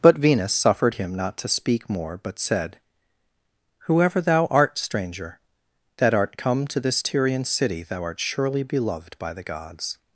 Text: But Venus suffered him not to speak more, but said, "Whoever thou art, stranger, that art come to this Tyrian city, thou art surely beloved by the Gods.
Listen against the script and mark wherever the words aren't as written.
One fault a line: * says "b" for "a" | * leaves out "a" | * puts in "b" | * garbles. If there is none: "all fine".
all fine